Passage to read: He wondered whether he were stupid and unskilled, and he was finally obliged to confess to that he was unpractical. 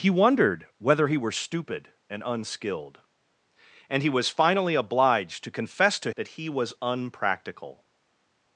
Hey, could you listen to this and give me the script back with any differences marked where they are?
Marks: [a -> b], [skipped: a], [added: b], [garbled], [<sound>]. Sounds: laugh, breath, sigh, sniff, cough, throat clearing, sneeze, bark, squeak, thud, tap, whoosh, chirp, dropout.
He wondered whether he were stupid and unskilled, and he was finally obliged to confess to that he was unpractical.